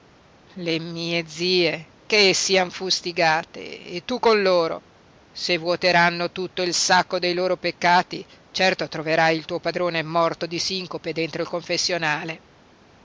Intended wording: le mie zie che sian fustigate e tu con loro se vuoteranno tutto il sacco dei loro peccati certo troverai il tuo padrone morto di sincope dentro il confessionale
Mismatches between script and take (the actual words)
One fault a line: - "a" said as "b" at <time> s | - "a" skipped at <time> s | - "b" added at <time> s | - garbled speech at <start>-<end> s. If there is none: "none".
none